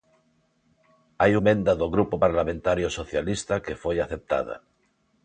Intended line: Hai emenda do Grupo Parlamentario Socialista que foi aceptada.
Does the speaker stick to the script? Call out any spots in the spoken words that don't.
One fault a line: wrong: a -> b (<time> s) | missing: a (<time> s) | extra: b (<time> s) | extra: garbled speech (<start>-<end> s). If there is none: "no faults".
no faults